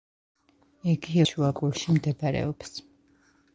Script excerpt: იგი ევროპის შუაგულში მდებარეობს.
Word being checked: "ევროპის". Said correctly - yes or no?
no